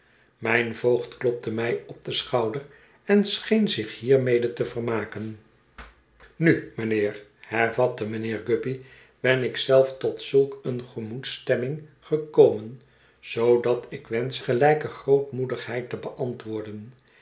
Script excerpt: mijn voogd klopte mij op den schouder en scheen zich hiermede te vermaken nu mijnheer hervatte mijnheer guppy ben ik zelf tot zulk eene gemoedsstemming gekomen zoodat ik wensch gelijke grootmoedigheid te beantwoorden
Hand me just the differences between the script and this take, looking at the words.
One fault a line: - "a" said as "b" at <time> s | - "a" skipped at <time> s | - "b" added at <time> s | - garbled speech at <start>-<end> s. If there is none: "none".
none